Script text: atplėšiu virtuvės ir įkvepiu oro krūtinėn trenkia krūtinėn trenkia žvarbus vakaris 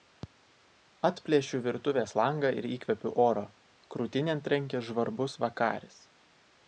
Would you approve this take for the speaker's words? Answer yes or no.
no